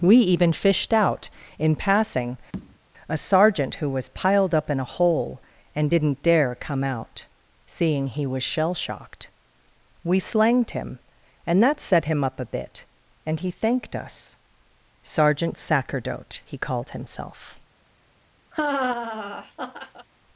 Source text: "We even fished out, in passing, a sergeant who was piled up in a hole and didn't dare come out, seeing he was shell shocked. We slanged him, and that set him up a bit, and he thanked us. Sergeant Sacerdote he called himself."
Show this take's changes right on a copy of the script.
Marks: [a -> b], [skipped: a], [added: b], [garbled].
"We even fished out, in passing, a sergeant who was piled up in a hole and didn't dare come out, seeing he was shell shocked. We slanged him, and that set him up a bit, and he thanked us. Sergeant Sacerdote he called himself."